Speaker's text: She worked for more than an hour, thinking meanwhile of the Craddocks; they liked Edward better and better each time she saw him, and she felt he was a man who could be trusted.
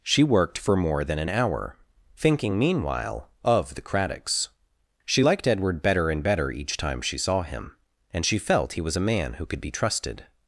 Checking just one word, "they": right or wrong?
wrong